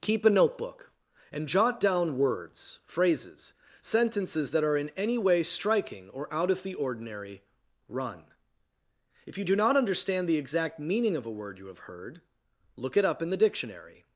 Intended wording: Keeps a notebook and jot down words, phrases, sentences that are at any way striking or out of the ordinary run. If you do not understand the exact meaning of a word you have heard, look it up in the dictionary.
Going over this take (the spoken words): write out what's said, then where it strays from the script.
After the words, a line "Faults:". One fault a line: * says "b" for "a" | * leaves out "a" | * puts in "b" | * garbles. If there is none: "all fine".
Keep a notebook and jot down words, phrases, sentences that are in any way striking or out of the ordinary run. If you do not understand the exact meaning of a word you have heard, look it up in the dictionary.
Faults:
* says "Keep" for "Keeps"
* says "in" for "at"